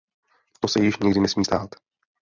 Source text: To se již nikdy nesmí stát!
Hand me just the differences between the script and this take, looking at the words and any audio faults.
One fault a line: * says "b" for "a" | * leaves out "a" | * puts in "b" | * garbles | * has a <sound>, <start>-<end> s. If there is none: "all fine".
all fine